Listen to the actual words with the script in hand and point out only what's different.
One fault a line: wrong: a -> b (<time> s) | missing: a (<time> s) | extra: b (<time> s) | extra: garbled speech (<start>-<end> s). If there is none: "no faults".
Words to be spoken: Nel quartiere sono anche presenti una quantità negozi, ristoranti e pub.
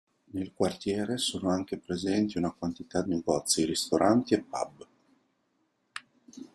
no faults